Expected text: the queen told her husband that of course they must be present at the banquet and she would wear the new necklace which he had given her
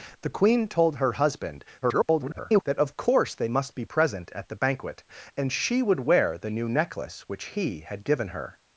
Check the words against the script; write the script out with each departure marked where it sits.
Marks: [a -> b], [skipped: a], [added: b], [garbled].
the queen told her husband [garbled] that of course they must be present at the banquet and she would wear the new necklace which he had given her